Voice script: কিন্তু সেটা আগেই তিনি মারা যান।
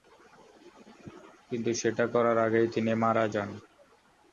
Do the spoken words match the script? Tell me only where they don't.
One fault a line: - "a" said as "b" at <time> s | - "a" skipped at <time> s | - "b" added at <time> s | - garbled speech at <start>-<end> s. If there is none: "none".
- "করার" added at 2.1 s